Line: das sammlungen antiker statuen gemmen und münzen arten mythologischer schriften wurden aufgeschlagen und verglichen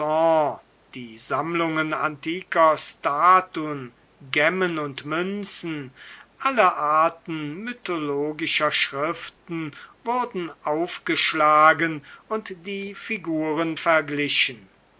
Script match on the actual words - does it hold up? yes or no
no